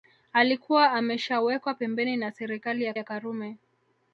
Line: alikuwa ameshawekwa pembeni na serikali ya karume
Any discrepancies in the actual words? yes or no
yes